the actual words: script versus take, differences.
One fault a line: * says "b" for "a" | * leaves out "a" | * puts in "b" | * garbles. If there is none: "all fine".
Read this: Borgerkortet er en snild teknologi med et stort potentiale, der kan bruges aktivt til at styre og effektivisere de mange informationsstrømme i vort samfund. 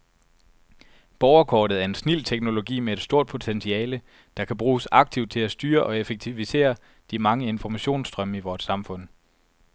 all fine